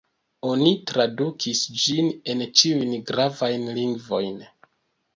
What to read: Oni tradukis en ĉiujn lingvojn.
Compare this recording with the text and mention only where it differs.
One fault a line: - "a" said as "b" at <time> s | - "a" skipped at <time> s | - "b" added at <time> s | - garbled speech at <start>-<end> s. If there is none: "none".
- "ĝin" added at 1.8 s
- "gravajn" added at 3.1 s